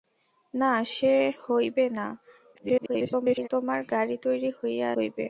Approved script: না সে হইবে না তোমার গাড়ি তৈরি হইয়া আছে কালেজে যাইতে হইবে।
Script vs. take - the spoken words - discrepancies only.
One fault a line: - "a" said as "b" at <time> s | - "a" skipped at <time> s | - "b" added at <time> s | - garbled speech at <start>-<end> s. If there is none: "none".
- garbled speech at 2.5-3.5 s
- "আছে কালেজে যাইতে" skipped at 4.9 s